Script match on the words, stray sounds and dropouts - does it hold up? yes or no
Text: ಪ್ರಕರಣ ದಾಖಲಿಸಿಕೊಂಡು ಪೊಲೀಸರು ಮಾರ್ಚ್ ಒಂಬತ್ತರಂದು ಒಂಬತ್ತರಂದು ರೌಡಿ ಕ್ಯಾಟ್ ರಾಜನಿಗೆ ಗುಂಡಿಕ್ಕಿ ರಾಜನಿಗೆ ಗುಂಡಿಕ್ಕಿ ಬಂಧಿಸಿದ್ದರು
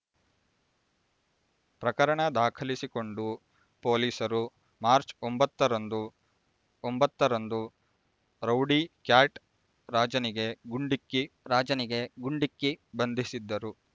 yes